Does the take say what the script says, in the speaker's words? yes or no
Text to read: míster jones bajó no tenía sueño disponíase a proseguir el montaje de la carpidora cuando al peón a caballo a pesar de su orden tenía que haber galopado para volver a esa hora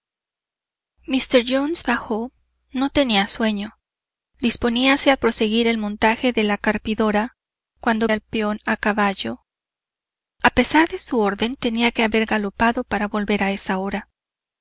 yes